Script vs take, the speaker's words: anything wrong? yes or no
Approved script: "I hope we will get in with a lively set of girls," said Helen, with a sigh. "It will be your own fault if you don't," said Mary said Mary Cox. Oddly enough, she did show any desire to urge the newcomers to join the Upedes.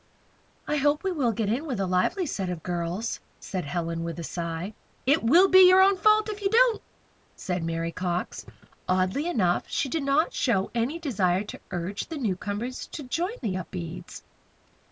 yes